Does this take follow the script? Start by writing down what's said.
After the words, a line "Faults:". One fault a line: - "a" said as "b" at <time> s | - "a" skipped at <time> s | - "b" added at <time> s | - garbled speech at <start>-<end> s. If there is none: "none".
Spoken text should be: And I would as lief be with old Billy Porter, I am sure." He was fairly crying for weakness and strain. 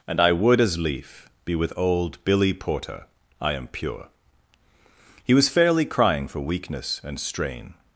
And I would as lief be with old Billy Porter, I am pure." He was fairly crying for weakness and strain.
Faults:
- "sure" said as "pure" at 3.7 s